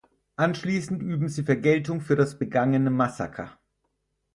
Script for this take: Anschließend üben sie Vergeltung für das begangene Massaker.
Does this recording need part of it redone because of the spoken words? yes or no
no